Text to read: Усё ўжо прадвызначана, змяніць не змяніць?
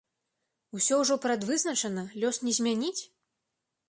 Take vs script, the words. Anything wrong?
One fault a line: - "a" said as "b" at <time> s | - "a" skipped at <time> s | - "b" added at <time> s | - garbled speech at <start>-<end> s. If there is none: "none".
- "змяніць" said as "лёс" at 2.2 s